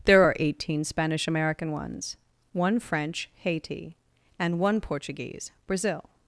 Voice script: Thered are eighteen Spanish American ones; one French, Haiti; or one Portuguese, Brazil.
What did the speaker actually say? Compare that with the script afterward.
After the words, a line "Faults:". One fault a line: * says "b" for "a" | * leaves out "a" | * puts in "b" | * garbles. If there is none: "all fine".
There are eighteen Spanish American ones; one French, Haiti; and one Portuguese, Brazil.
Faults:
* says "There" for "Thered"
* says "and" for "or"